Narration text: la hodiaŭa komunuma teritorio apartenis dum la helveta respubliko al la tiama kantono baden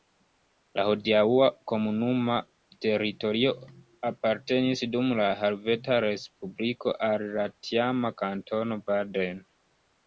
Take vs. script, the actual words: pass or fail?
pass